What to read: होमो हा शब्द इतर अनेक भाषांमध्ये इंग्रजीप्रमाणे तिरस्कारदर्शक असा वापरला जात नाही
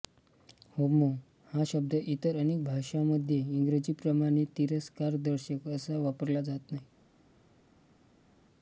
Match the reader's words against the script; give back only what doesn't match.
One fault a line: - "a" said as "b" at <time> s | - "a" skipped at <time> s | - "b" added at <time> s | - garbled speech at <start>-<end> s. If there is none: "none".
none